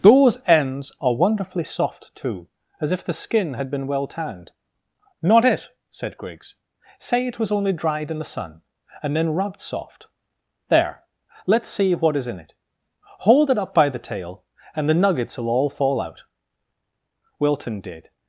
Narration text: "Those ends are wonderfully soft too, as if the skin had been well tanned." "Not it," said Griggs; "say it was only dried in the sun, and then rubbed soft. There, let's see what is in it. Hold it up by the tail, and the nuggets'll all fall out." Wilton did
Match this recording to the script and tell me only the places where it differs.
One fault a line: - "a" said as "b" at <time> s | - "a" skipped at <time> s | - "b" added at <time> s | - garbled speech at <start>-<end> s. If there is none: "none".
none